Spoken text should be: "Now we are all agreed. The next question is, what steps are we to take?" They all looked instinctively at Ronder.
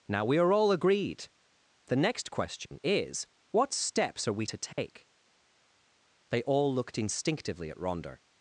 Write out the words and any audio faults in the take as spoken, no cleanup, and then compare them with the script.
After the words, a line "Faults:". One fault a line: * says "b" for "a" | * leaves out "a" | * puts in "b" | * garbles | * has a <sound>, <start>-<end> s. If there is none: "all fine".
"Now we are all agreed. The next question is, what steps are we to take?" They all looked instinctively at Ronder.
Faults:
* has a dropout, 2.7-2.7 s
* has a dropout, 4.7-4.8 s